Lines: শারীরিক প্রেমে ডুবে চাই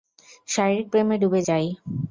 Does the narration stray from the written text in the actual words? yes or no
no